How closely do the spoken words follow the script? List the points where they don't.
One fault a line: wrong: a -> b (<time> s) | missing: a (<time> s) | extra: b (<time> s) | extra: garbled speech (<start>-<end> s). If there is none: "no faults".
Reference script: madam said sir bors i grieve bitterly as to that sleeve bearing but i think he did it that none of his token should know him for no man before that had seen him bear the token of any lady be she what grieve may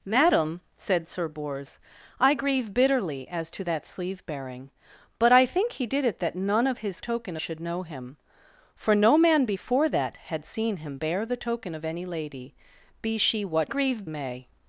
no faults